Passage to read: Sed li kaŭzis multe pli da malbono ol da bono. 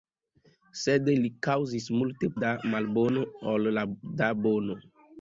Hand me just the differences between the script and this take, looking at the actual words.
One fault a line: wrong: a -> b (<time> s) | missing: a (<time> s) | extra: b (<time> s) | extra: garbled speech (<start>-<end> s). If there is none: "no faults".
missing: pli (2.3 s)